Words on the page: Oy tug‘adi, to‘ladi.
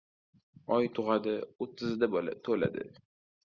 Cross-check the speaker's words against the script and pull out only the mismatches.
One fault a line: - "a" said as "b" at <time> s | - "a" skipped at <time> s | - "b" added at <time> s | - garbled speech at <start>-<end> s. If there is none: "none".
- "o‘ttizida" added at 1.7 s